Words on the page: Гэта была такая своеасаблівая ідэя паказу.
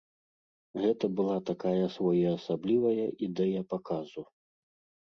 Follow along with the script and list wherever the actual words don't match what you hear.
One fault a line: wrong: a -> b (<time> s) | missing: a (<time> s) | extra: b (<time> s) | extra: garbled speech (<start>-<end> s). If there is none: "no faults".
no faults